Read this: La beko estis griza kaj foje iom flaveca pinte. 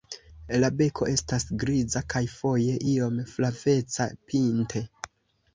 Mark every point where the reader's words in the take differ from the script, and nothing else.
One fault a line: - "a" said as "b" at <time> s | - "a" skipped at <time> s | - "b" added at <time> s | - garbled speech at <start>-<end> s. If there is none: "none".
- "estis" said as "estas" at 1.1 s